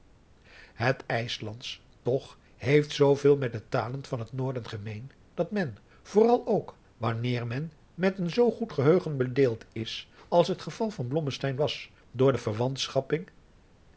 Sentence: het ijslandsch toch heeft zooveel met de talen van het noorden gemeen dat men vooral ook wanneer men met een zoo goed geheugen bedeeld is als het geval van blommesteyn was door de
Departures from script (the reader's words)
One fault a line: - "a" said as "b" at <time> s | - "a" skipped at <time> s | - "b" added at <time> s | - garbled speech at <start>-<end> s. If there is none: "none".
none